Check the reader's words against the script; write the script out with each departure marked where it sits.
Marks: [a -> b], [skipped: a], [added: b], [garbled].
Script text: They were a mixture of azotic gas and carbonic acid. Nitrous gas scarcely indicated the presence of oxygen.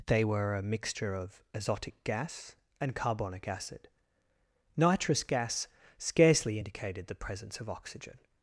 They were a mixture of azotic gas and carbonic acid. Nitrous gas scarcely indicated the presence of oxygen.